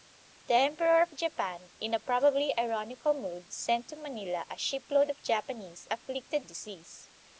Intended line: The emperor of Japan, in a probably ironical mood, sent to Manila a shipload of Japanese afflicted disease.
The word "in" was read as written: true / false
true